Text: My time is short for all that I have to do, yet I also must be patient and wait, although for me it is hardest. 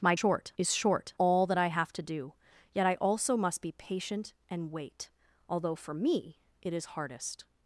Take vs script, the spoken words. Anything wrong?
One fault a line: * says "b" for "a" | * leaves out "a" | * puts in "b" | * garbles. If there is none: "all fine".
* says "short" for "time"
* leaves out "for"